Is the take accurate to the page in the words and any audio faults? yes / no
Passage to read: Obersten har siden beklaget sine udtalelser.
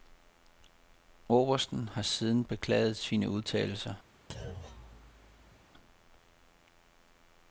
no